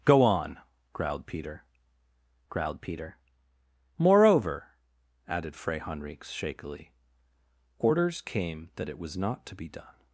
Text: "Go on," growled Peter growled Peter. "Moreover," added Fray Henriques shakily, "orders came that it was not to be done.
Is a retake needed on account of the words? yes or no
no